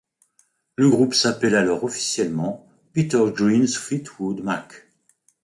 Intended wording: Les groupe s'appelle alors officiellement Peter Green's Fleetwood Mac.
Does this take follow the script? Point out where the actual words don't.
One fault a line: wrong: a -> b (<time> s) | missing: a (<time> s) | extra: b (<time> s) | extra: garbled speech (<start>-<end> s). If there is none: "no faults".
wrong: Les -> Le (0.8 s)